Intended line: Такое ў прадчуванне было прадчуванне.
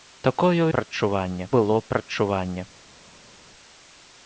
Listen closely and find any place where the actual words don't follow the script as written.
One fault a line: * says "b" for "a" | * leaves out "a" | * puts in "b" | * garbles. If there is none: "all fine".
all fine